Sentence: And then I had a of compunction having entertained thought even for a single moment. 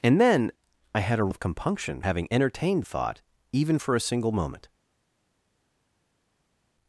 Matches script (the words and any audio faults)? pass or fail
pass